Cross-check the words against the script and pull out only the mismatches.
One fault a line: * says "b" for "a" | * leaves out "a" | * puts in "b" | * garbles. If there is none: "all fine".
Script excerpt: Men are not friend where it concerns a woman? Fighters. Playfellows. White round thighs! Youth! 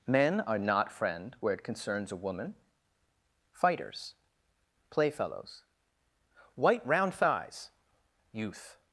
all fine